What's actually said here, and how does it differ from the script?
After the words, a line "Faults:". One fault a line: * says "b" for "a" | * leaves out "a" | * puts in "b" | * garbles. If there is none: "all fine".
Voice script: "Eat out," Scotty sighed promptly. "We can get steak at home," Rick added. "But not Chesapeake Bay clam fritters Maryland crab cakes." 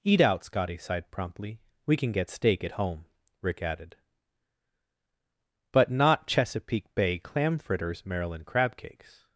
"Eat out," Scotty sighed promptly. "We can get steak at home," Rick added. "But not Chesapeake Bay clam fritters Maryland crab cakes."
Faults:
all fine